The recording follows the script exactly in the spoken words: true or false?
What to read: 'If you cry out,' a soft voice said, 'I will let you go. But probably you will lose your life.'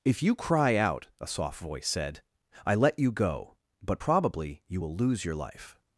false